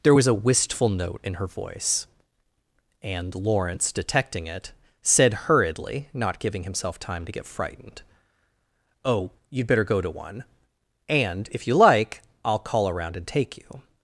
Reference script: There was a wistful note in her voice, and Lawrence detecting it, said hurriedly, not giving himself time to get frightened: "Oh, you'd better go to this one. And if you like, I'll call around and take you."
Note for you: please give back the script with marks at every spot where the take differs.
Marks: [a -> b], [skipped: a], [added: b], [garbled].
There was a wistful note in her voice, and Lawrence detecting it, said hurriedly, not giving himself time to get frightened: "Oh, you'd better go to [skipped: this] one. And if you like, I'll call around and take you."